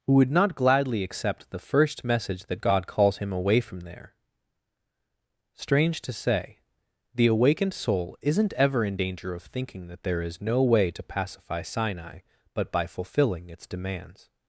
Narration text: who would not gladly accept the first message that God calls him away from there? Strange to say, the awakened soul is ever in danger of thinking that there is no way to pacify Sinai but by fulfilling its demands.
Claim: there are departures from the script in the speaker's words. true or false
true